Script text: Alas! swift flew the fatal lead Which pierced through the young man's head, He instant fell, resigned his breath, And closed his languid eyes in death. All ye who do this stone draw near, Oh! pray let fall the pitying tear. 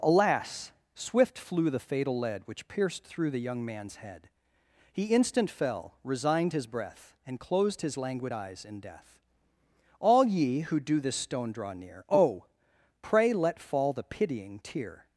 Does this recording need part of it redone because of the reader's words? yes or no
no